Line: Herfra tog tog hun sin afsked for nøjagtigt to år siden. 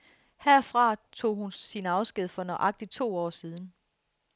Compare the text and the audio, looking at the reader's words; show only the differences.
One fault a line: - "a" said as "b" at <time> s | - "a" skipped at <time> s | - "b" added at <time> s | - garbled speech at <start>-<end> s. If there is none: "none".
- "tog" skipped at 1.4 s